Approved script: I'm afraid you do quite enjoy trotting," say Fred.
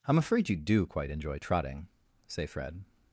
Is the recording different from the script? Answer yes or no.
no